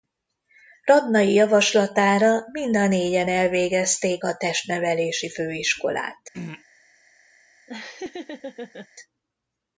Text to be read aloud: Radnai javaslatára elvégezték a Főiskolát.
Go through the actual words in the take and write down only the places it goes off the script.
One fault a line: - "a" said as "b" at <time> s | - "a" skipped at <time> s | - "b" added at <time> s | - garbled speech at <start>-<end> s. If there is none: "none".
- "mind a négyen" added at 2.5 s
- "Testnevelési" added at 4.4 s